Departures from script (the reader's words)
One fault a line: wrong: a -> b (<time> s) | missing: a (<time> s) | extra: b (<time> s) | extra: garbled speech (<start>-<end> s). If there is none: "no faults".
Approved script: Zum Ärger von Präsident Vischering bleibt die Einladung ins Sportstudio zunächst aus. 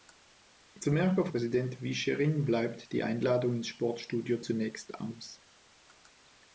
missing: von (1.3 s)